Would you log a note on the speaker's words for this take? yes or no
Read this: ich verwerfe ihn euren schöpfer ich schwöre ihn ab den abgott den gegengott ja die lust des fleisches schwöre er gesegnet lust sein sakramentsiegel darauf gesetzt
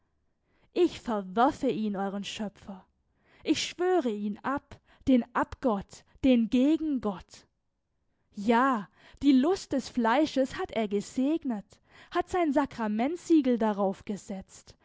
yes